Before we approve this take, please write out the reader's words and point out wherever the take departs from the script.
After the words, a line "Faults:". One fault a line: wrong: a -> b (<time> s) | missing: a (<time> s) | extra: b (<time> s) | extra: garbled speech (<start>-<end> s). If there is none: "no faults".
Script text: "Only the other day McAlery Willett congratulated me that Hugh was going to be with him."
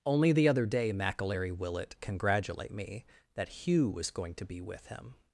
"Only the other day McAlery Willett congratulate me that Hugh was going to be with him."
Faults:
wrong: congratulated -> congratulate (2.0 s)